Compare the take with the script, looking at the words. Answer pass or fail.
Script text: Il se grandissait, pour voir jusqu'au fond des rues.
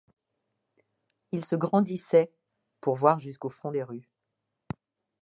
pass